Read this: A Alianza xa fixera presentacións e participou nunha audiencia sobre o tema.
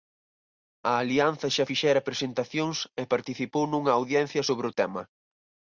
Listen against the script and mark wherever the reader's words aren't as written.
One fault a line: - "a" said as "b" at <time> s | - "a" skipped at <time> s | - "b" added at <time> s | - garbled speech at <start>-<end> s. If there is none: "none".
none